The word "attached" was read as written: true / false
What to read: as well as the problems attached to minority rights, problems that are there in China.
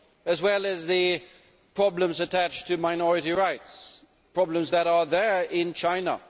true